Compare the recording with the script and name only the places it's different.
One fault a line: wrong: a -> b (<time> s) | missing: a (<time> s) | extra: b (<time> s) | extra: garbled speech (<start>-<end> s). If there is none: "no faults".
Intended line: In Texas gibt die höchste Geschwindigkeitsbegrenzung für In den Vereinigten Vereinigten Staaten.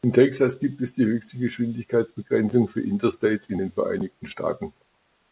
extra: es (0.8 s)
extra: Interstates (2.8 s)
missing: Vereinigten (4.3 s)